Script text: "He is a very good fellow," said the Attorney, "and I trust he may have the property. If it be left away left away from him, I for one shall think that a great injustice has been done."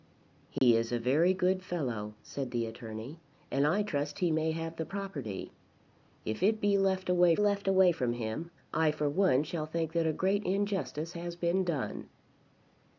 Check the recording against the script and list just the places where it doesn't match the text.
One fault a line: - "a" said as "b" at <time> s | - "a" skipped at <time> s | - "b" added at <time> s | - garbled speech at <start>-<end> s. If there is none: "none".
none